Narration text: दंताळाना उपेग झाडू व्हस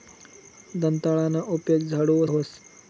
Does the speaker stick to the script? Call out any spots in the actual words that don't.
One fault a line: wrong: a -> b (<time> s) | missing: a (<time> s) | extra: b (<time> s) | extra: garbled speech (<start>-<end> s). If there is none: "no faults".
no faults